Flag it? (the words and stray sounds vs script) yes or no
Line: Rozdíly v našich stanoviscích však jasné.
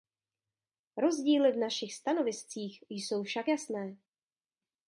yes